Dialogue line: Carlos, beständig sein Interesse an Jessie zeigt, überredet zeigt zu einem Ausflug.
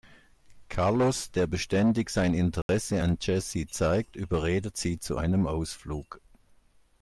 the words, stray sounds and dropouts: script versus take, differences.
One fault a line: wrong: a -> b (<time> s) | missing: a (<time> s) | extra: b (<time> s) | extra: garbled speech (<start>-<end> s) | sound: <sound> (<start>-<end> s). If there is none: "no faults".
extra: der (1.3 s)
sound: dropout (2.6-2.7 s)
wrong: zeigt -> sie (4.8 s)